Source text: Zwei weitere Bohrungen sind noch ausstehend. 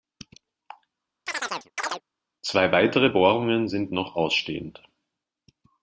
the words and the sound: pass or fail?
fail